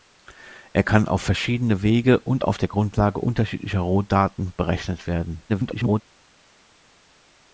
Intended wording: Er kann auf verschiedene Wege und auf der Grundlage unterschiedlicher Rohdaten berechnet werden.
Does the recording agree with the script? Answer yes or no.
no